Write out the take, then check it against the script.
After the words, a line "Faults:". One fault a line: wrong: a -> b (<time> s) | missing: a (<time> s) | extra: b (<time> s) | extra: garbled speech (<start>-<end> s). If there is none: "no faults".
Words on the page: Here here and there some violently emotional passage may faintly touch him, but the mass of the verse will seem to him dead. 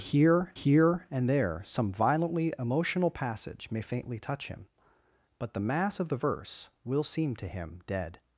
Here here and there some violently emotional passage may faintly touch him, but the mass of the verse will seem to him dead.
Faults:
no faults